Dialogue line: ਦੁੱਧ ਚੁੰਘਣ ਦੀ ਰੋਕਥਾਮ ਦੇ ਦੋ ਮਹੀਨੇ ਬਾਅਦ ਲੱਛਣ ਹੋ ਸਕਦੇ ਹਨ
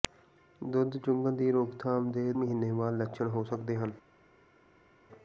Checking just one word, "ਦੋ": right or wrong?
wrong